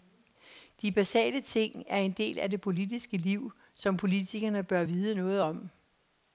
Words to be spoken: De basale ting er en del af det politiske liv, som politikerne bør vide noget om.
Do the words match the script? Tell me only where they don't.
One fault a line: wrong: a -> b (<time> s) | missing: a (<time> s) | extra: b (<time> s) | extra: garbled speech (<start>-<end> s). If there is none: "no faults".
no faults